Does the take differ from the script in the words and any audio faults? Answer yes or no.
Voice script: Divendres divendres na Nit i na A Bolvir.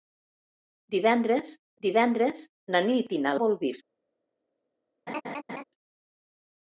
yes